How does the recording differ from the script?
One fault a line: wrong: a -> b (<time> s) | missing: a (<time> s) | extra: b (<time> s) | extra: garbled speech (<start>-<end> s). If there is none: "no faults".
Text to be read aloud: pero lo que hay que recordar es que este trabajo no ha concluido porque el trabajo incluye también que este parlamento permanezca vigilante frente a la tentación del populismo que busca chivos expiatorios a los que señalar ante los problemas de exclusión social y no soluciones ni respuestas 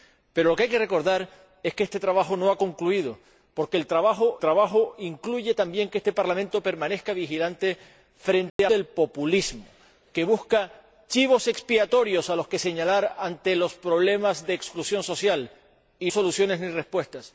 extra: trabajo (4.4 s)
missing: la tentación (8.7 s)
missing: no (16.1 s)